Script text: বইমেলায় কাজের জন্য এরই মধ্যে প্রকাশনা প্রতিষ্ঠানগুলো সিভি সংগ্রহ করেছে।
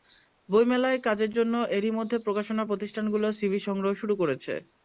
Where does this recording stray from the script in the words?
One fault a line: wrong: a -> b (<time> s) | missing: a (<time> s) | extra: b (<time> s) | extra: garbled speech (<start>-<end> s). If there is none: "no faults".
extra: শুরু (4.0 s)